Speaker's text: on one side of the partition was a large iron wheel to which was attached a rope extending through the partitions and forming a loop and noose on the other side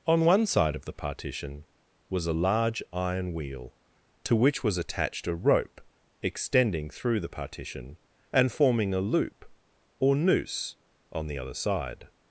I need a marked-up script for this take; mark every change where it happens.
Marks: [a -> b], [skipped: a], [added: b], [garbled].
on one side of the partition was a large iron wheel to which was attached a rope extending through the [partitions -> partition] and forming a loop [and -> or] noose on the other side